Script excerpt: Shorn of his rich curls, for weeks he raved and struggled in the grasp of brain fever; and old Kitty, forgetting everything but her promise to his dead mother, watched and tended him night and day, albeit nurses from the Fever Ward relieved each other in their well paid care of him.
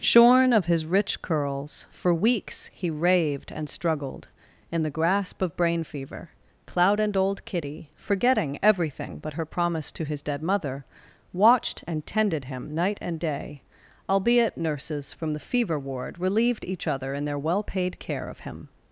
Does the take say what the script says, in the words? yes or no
no